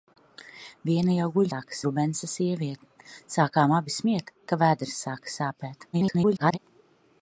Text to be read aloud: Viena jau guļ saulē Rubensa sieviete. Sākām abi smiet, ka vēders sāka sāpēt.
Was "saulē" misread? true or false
true